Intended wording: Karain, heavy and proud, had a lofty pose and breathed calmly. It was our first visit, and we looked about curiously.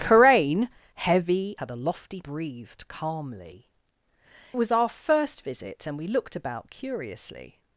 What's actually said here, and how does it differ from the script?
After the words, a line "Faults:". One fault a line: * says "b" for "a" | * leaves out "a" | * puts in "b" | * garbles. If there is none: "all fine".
Karain, heavy had a lofty breathed calmly. Was our first visit, and we looked about curiously.
Faults:
* leaves out "and proud"
* leaves out "pose and"
* leaves out "It"